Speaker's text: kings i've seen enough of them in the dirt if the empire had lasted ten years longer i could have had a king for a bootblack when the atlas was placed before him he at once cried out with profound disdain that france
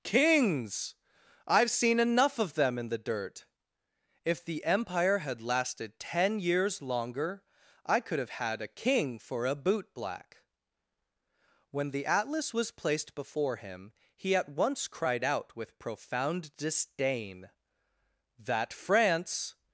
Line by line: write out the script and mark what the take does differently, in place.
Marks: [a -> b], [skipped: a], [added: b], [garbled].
kings i've seen enough of them in the dirt if the empire had lasted ten years longer i could have had a king for a bootblack when the atlas was placed before him he at once cried out with profound disdain that france